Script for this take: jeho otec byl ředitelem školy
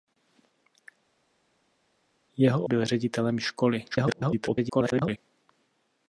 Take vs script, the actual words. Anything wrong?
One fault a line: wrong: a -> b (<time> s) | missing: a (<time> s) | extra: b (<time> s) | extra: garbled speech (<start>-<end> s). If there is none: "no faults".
missing: otec (2.7 s)
extra: garbled speech (3.9-5.2 s)